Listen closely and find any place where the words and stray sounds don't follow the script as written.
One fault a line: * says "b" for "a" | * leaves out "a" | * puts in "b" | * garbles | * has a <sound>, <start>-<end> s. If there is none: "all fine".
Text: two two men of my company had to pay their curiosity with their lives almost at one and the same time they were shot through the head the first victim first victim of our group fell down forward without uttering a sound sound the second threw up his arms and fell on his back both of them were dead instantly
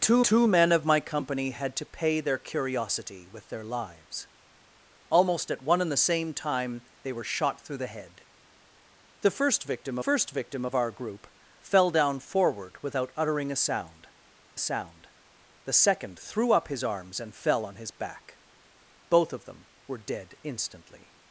all fine